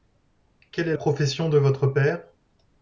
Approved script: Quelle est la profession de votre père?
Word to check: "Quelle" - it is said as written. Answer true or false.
true